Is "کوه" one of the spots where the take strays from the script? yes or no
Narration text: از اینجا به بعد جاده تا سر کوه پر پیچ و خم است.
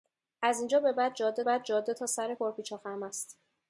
yes